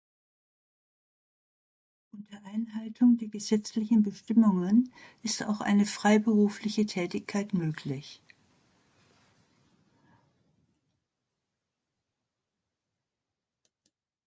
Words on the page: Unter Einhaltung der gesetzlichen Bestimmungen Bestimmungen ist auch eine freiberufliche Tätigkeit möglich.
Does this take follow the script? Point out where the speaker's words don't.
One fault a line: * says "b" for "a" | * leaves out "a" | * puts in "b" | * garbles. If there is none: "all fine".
* leaves out "Bestimmungen"